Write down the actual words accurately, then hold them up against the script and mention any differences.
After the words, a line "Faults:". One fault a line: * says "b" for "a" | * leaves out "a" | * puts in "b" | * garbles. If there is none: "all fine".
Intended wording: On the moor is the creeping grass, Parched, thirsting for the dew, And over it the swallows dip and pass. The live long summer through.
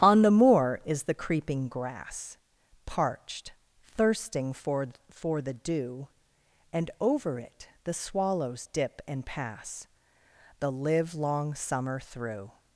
On the moor is the creeping grass, Parched, thirsting for for the dew, And over it the swallows dip and pass. The live long summer through.
Faults:
* puts in "for"